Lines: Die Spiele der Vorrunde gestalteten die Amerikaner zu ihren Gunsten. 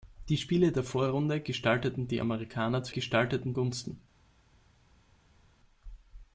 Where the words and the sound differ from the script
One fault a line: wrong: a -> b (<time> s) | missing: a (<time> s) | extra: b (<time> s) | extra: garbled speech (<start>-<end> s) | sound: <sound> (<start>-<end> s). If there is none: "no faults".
wrong: ihren -> gestalteten (2.9 s)